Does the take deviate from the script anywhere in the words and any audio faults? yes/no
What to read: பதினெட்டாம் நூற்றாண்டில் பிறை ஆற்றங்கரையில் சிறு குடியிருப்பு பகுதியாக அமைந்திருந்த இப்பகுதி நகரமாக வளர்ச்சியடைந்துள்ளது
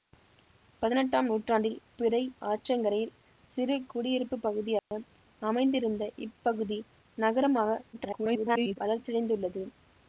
yes